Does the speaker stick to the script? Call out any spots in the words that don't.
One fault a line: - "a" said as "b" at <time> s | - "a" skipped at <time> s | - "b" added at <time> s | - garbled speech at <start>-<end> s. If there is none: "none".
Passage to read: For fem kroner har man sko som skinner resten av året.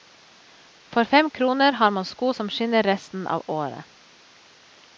none